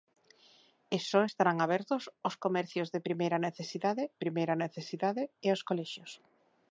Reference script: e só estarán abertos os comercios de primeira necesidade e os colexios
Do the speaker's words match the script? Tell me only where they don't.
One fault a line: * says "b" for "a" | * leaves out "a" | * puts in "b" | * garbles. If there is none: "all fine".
* puts in "primeira necesidade"